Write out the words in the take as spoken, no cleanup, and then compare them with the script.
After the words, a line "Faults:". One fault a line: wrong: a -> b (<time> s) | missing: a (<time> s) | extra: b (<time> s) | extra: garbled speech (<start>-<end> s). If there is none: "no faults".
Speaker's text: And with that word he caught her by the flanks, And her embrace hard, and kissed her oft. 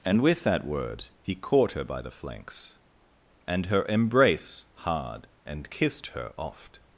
And with that word he caught her by the flanks, And her embrace hard, and kissed her oft.
Faults:
no faults